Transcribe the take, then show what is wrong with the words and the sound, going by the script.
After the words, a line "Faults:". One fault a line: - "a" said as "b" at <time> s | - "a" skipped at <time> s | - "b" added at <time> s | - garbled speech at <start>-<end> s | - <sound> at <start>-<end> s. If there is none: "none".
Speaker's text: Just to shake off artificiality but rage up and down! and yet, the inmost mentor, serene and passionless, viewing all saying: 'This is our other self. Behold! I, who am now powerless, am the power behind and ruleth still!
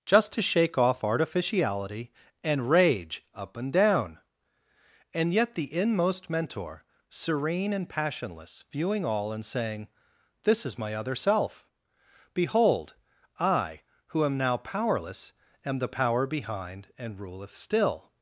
Just to shake off artificiality and rage up and down! and yet, the inmost mentor, serene and passionless, viewing all and saying: 'This is my other self. Behold! I, who am now powerless, am the power behind and ruleth still!
Faults:
- "but" said as "and" at 2.4 s
- "and" added at 9.3 s
- "our" said as "my" at 10.8 s